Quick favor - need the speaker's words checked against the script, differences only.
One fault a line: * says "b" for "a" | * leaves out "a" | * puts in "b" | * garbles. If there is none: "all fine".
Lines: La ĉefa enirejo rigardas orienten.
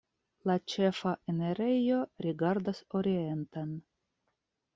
all fine